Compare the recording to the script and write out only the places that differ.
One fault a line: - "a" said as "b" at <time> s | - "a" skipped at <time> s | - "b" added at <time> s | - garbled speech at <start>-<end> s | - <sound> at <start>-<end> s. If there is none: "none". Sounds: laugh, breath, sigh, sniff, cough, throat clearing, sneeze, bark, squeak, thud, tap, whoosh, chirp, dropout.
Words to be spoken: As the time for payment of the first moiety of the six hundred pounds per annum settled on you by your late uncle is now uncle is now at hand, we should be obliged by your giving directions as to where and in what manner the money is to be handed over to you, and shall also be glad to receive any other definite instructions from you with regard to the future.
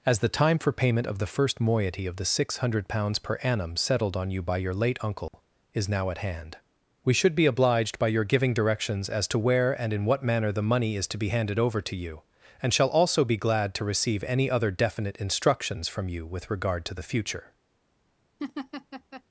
- dropout at 5.3-5.3 s
- "uncle is now" skipped at 6.1 s
- laugh at 18.4-19.2 s